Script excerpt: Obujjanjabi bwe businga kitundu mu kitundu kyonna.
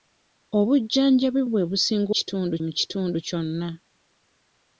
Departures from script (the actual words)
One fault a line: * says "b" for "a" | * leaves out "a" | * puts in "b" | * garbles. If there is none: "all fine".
all fine